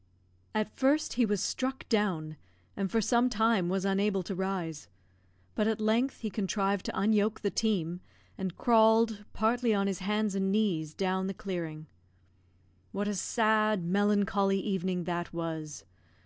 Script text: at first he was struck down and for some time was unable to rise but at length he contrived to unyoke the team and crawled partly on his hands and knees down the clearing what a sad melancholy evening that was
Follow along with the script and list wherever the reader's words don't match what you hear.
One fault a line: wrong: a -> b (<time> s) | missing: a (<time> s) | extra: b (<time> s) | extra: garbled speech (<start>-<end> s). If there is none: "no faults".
no faults